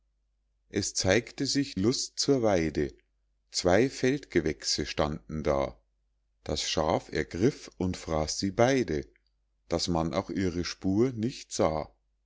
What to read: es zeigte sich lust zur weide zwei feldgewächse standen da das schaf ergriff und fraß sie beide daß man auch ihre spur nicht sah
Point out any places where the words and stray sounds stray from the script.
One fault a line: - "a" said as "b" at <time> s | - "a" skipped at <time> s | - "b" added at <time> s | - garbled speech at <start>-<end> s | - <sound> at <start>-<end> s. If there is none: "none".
none